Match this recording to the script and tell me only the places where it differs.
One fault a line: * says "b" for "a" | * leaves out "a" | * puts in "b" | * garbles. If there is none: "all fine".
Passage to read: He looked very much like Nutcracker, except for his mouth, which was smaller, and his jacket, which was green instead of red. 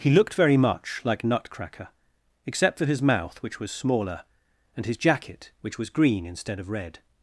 all fine